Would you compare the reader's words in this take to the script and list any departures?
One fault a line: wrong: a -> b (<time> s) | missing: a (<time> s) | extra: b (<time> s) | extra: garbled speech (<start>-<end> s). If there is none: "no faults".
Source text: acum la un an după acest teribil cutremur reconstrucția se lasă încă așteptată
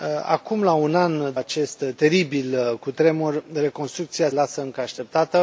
missing: după (1.3 s)
missing: se (4.3 s)